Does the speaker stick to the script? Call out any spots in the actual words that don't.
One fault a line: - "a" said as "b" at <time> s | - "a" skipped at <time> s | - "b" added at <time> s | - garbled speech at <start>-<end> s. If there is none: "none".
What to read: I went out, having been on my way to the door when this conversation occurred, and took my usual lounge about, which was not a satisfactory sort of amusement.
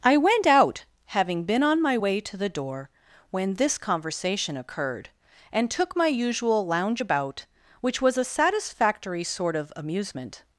- "not" skipped at 8.2 s